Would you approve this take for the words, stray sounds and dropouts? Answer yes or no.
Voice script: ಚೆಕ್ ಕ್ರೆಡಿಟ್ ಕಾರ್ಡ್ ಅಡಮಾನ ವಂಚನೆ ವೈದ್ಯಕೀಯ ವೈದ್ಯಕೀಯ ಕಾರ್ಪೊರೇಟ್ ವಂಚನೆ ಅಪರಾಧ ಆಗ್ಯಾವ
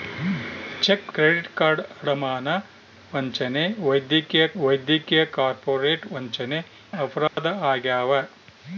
no